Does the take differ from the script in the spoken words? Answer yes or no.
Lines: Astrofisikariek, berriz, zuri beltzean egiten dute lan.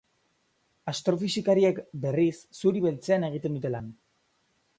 no